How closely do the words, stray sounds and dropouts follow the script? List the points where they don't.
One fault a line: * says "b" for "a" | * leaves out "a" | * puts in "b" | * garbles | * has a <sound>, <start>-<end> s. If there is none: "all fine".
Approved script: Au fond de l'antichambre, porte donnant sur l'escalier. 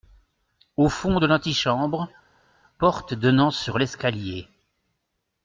all fine